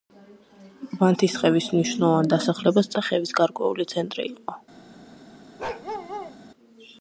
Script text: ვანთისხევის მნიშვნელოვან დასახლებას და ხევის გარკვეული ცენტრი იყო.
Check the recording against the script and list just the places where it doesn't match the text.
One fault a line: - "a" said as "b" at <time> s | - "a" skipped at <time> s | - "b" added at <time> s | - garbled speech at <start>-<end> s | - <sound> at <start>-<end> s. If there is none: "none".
- bark at 5.6-6.4 s